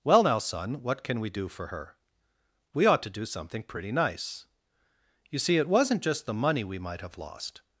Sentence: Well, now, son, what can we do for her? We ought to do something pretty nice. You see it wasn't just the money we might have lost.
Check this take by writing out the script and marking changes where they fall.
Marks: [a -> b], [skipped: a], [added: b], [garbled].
Well, now, son, what can we do for her? We ought to do something pretty nice. You see it wasn't just the money we might have lost.